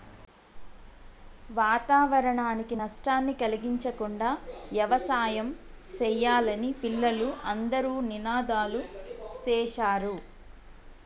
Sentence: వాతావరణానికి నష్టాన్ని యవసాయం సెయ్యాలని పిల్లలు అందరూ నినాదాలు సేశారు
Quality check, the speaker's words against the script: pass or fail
fail